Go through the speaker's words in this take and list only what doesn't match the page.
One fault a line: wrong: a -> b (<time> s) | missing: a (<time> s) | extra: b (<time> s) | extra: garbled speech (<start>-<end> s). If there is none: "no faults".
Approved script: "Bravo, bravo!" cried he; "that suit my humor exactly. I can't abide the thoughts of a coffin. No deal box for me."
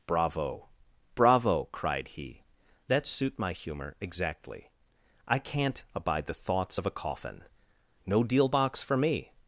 no faults